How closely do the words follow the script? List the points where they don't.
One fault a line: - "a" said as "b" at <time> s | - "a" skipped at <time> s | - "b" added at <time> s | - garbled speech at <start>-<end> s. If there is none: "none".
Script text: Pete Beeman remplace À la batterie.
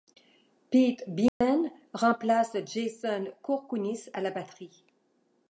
- "Jason Kourkounis" added at 2.6 s